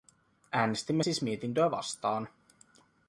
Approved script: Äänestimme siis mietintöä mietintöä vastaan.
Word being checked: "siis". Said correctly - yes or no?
yes